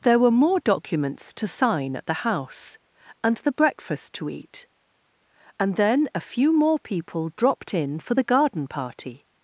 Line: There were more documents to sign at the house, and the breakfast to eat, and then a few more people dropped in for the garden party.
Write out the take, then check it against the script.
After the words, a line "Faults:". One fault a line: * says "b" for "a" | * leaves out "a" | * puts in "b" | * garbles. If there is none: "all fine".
There were more documents to sign at the house, and the breakfast to eat, and then a few more people dropped in for the garden party.
Faults:
all fine